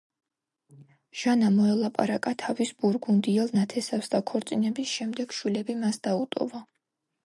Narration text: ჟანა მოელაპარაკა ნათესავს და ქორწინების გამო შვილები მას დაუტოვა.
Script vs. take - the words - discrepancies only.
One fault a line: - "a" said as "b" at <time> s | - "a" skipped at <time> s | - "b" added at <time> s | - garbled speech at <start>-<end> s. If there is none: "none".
- "თავის ბურგუნდიელ" added at 2.5 s
- "გამო" said as "შემდეგ" at 5.0 s